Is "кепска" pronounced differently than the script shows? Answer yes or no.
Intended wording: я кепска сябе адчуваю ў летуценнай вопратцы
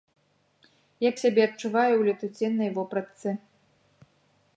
yes